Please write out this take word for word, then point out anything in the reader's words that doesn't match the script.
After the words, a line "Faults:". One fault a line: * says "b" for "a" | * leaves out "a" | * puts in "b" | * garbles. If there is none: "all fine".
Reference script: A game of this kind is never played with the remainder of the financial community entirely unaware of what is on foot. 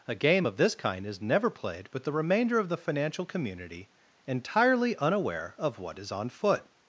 A game of this kind is never played with the remainder of the financial community entirely unaware of what is on foot.
Faults:
all fine